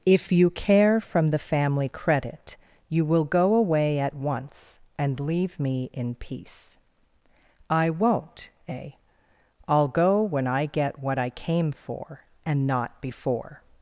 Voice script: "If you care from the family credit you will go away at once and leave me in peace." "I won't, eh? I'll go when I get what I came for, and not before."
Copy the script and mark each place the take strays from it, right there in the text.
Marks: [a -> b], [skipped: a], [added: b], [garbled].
"If you care from the family credit you will go away at once and leave me in peace." "I won't, eh? I'll go when I get what I came for, and not before."